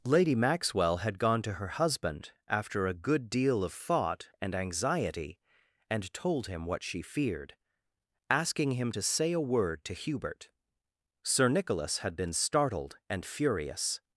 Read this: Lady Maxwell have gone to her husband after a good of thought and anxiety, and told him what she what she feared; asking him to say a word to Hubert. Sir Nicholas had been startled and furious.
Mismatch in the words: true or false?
true